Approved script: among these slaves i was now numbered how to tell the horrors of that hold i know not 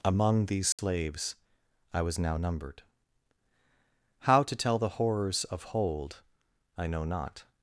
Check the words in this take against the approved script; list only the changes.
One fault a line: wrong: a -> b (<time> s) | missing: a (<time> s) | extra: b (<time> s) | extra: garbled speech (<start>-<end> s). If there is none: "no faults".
missing: that (5.6 s)